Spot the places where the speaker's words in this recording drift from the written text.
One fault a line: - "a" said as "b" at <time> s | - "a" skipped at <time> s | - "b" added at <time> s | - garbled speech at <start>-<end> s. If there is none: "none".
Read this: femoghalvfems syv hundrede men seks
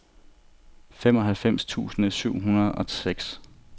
- "tusind" added at 1.6 s
- "men" said as "og" at 2.7 s